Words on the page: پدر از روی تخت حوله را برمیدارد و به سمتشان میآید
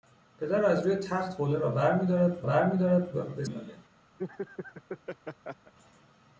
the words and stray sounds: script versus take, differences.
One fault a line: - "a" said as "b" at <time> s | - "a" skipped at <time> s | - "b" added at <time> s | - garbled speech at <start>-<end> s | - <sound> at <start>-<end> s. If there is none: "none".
- "برمیدارد" added at 2.4 s
- "سمتشان" skipped at 3.4 s
- laugh at 4.2-5.7 s